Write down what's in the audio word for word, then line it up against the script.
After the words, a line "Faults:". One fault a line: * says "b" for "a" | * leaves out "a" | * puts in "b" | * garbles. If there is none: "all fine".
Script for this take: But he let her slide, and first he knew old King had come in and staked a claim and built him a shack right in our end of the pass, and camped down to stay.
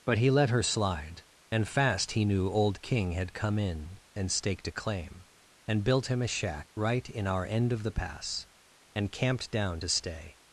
But he let her slide, and fast he knew old King had come in and staked a claim and built him a shack right in our end of the pass, and camped down to stay.
Faults:
* says "fast" for "first"